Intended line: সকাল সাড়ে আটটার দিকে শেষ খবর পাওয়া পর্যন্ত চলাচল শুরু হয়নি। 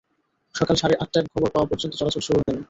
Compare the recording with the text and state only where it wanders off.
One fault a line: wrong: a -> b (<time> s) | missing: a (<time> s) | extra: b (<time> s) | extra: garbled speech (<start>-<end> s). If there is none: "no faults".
missing: দিকে শেষ (1.3 s)